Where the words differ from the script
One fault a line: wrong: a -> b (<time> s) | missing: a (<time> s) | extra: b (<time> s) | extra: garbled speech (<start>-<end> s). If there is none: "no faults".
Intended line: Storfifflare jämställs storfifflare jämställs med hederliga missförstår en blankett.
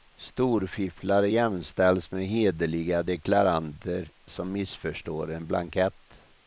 wrong: storfifflare jämställs med hederliga -> med hederliga deklaranter som (2.1 s)